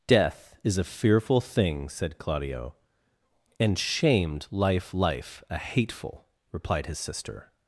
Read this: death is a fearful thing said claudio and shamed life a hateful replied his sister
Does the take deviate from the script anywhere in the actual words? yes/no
yes